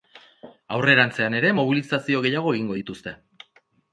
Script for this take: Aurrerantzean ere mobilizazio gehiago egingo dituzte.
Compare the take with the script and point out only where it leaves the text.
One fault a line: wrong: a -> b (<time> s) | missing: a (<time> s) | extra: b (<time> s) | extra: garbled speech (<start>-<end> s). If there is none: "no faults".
no faults